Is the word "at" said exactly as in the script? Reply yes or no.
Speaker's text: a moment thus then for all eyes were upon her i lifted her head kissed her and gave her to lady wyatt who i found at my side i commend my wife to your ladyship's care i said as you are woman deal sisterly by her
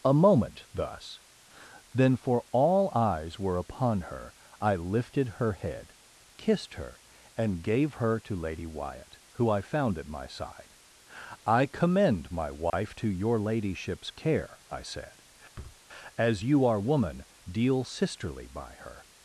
yes